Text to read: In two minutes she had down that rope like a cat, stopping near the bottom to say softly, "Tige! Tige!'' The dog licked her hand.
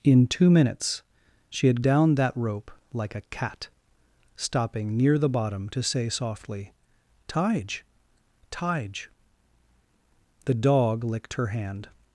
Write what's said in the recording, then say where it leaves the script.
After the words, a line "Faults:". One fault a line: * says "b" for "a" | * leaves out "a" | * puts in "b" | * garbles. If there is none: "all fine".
In two minutes she had down that rope like a cat, stopping near the bottom to say softly, "Tige! Tige!'' The dog licked her hand.
Faults:
all fine